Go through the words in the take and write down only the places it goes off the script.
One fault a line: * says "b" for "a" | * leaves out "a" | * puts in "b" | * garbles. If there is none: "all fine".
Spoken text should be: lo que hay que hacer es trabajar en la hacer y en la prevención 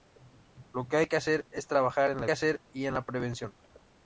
all fine